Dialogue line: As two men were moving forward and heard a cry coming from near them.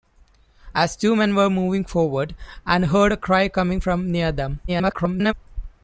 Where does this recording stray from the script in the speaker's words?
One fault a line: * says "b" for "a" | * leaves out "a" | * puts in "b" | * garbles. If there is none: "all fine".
* garbles